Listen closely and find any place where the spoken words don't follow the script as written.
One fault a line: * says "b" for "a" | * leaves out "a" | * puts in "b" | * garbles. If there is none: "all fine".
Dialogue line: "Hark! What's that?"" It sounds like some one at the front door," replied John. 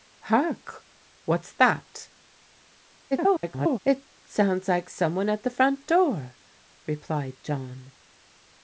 * garbles